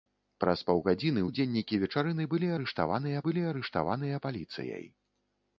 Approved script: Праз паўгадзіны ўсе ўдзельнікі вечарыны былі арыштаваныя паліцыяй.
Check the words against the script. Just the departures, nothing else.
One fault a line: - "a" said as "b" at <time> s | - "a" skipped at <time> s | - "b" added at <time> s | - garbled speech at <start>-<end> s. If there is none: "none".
- "ўсе" skipped at 1.2 s
- "былі арыштаваныя" added at 3.3 s